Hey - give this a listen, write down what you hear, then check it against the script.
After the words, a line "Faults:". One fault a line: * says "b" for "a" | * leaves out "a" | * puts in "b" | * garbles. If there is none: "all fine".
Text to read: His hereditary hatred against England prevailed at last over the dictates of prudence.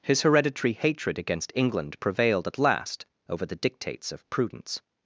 His hereditary hatred against England prevailed at last over the dictates of prudence.
Faults:
all fine